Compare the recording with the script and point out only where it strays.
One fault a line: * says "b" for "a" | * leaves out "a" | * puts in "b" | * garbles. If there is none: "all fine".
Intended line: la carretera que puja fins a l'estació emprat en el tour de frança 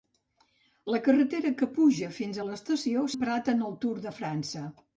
all fine